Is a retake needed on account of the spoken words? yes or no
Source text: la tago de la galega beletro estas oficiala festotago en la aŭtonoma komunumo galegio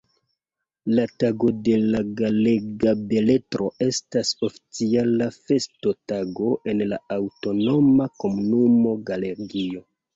no